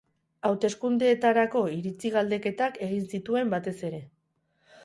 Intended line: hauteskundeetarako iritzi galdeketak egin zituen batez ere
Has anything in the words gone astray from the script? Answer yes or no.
no